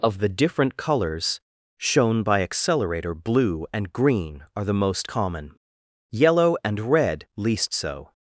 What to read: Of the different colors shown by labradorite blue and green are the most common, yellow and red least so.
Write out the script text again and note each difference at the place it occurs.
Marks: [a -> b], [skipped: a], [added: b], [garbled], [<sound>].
Of the different colors shown by [labradorite -> accelerator] blue and green are the most common, yellow and red least so.